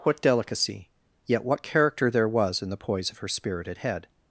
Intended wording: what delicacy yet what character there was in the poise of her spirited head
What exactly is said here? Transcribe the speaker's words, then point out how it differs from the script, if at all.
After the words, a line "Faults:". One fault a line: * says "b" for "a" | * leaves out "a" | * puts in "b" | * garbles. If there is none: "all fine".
what delicacy yet what character there was in the poise of her spirited head
Faults:
all fine